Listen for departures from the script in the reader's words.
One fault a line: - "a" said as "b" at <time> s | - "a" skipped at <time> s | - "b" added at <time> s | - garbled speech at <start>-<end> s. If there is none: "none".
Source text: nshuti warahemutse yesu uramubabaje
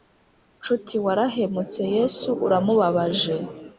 none